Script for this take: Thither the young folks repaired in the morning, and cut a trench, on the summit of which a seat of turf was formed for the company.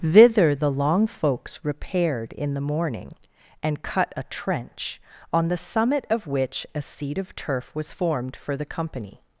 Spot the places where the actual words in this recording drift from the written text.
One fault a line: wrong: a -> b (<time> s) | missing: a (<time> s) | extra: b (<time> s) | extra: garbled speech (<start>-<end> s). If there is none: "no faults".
wrong: young -> long (0.7 s)